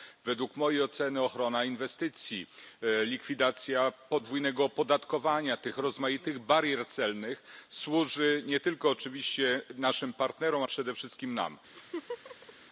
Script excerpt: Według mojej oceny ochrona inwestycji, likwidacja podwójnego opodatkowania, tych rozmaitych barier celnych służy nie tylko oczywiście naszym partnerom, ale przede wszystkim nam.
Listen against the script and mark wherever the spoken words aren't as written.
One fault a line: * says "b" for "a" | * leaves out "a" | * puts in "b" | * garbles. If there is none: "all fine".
* leaves out "ale"